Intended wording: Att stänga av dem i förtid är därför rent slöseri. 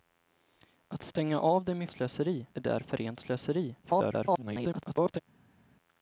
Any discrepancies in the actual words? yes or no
yes